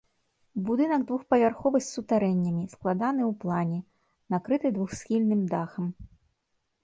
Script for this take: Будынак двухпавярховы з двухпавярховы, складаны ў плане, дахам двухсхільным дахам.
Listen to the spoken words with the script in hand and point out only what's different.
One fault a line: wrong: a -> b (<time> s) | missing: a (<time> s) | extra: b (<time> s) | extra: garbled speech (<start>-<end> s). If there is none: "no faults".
wrong: двухпавярховы -> сутарэннямі (1.9 s)
wrong: дахам -> накрыты (4.3 s)